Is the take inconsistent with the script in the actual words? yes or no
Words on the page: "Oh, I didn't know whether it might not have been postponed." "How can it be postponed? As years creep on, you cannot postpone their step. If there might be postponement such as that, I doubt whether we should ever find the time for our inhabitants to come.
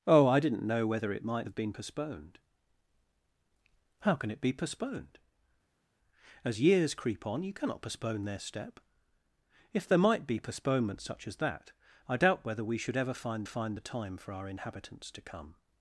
yes